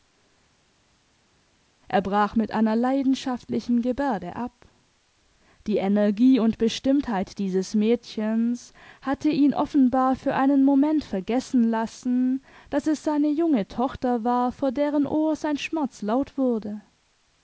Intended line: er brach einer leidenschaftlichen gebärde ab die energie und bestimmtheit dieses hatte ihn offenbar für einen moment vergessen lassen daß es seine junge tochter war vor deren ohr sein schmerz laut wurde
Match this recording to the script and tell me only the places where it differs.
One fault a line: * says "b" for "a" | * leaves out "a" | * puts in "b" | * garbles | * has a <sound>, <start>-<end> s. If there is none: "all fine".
* puts in "mit"
* puts in "mädchens"